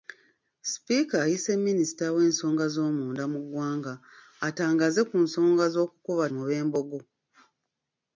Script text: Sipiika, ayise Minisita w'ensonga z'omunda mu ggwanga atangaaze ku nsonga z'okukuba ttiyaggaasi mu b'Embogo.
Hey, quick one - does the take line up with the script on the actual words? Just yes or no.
no